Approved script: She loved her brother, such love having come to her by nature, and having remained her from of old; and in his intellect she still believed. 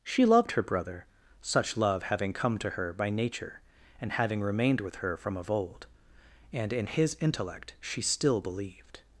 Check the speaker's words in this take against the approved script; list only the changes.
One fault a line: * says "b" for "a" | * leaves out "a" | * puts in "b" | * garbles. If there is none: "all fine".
* puts in "with"